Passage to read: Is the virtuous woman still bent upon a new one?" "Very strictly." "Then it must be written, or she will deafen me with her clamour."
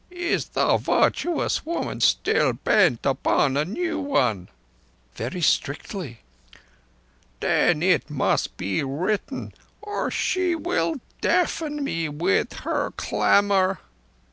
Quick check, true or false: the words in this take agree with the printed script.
true